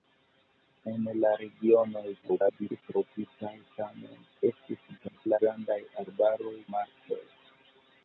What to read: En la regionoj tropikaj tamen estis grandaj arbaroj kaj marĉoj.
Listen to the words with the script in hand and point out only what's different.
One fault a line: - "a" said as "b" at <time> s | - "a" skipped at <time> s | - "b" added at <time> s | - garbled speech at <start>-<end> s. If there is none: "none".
- garbled speech at 2.2-2.8 s
- garbled speech at 5.0-5.4 s
- "kaj" skipped at 6.6 s